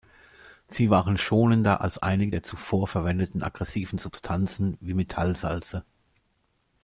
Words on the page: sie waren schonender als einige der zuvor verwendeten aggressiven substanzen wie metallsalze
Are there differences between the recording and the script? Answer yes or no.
no